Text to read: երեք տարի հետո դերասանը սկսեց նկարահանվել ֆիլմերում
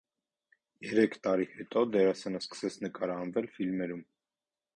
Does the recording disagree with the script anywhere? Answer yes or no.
no